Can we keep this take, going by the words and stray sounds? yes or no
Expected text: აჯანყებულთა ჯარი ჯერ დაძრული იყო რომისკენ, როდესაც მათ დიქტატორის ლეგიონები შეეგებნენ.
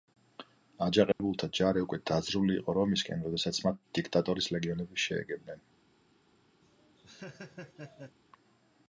no